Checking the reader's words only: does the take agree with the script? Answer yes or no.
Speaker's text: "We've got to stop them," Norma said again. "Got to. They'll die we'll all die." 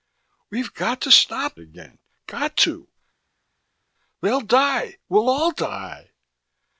no